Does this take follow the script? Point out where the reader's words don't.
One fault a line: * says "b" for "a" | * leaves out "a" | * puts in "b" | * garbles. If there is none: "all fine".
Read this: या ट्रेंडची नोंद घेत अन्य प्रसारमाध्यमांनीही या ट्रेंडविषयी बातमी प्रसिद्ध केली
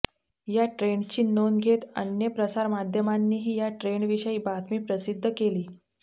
all fine